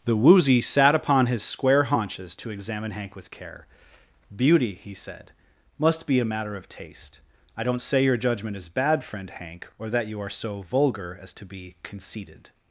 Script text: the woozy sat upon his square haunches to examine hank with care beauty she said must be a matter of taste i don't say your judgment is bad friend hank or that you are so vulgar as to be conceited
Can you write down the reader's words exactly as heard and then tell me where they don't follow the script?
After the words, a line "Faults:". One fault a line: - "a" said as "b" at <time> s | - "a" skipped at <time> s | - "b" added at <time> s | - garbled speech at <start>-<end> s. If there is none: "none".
the woozy sat upon his square haunches to examine hank with care beauty he said must be a matter of taste i don't say your judgment is bad friend hank or that you are so vulgar as to be conceited
Faults:
- "she" said as "he" at 4.8 s